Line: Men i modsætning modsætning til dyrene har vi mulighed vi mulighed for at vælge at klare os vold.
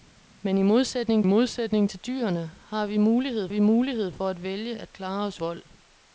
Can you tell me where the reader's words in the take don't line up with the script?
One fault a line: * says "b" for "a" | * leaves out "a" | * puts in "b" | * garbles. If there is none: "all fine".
all fine